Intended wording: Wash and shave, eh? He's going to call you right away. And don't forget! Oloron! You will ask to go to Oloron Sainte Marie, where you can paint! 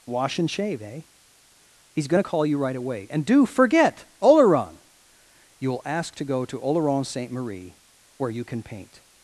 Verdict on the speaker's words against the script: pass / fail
fail